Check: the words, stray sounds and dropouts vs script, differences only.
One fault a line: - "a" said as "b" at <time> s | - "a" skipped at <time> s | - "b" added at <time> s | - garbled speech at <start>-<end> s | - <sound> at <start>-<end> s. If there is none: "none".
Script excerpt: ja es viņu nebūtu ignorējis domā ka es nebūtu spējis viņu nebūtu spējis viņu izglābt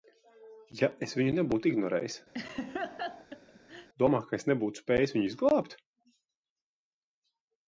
- laugh at 2.3-3.9 s
- "nebūtu spējis viņu" skipped at 5.3 s